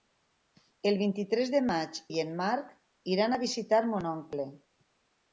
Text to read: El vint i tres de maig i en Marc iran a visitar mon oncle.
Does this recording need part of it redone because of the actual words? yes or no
no